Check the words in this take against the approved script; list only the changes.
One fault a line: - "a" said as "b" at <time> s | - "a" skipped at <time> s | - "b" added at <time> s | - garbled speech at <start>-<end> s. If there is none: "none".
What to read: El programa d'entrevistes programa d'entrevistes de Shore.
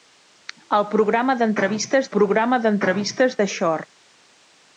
none